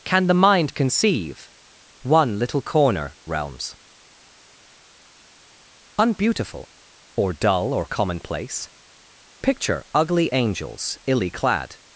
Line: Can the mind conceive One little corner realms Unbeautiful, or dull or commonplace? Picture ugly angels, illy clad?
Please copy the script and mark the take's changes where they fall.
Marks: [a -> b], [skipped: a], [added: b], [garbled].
Can the mind conceive One little corner realms Unbeautiful, or dull or commonplace? Picture ugly angels, illy clad?